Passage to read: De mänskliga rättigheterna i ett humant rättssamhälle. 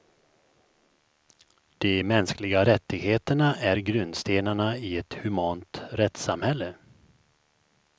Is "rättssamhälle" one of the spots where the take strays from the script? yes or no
no